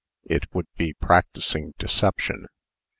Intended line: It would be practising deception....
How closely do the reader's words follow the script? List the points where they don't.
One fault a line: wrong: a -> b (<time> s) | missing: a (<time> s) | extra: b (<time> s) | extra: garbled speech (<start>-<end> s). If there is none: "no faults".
no faults